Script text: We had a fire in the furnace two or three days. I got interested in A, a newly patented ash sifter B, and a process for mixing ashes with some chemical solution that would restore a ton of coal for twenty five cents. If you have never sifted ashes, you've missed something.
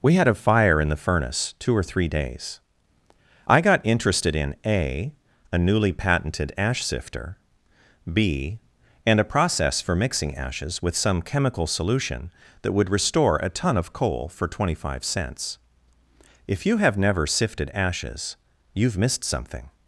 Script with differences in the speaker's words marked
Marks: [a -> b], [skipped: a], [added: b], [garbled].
We had a fire in the furnace two or three days. I got interested in A, a newly patented ash sifter B, and a process for mixing ashes with some chemical solution that would restore a ton of coal for twenty five cents. If you have never sifted ashes, you've missed something.